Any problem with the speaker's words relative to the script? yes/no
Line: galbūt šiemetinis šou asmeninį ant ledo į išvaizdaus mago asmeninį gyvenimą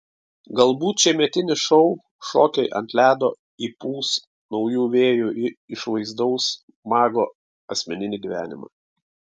yes